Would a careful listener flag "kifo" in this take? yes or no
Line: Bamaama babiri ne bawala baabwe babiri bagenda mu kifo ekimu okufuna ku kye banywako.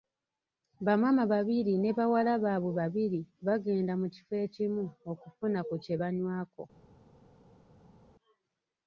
no